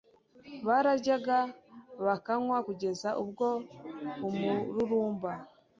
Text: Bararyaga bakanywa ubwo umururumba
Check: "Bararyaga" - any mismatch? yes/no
no